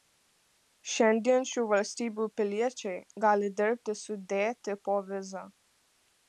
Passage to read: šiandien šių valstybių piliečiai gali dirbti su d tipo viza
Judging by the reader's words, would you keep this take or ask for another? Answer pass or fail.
pass